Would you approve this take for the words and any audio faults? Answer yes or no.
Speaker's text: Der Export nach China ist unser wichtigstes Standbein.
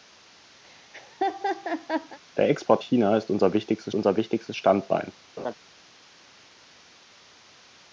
no